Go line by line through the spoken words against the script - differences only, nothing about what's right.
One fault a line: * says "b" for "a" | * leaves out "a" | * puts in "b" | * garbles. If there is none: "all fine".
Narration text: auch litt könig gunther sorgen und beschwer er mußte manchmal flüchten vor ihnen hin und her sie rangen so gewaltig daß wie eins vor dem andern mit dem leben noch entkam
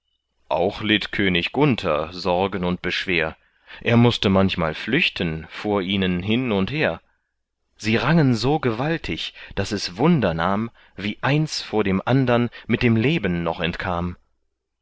* puts in "es wunder nahm"